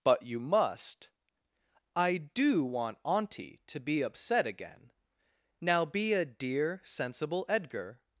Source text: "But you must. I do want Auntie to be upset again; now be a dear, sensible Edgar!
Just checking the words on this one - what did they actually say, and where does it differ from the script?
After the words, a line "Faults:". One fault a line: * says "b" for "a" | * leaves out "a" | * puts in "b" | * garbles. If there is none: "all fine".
"But you must. I do want Auntie to be upset again; now be a dear, sensible Edgar!
Faults:
all fine